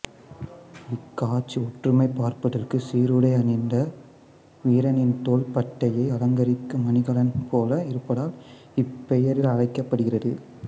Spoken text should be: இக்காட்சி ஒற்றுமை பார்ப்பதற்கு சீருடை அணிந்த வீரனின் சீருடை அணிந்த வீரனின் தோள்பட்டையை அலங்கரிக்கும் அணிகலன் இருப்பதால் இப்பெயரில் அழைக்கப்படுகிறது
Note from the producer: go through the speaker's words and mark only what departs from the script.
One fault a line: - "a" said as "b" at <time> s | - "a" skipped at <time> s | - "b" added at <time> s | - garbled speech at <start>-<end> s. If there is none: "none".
- "சீருடை அணிந்த வீரனின்" skipped at 5.1 s
- "போல" added at 7.5 s